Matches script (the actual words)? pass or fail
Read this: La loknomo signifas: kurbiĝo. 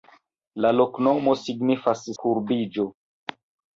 pass